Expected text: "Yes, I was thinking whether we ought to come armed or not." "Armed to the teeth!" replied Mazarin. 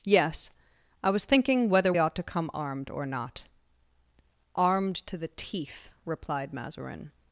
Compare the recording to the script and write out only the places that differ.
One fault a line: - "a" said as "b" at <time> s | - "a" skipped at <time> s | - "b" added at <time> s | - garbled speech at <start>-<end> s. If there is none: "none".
- "we" skipped at 1.9 s